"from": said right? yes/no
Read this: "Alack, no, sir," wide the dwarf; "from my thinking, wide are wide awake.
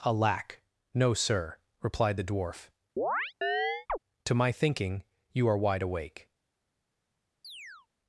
no